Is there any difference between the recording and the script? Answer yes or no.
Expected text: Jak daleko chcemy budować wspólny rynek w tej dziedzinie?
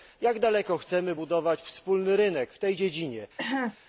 no